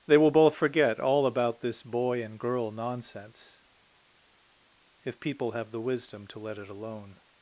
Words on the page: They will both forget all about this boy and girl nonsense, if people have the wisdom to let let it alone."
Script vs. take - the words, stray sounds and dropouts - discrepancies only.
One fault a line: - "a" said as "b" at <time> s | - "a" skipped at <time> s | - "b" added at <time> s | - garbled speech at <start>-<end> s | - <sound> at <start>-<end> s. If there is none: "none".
- "let" skipped at 6.6 s